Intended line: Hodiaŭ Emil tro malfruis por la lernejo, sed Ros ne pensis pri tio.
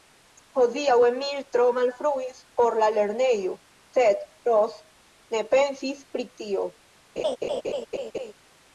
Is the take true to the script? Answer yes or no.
yes